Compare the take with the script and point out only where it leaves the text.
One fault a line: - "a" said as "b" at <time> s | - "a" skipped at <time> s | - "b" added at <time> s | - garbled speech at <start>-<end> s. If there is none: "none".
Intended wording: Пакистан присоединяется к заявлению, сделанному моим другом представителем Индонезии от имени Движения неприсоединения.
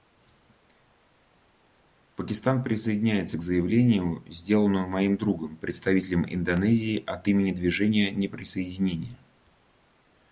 none